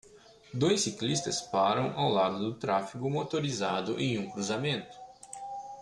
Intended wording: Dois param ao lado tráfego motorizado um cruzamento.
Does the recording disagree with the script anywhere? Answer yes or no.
yes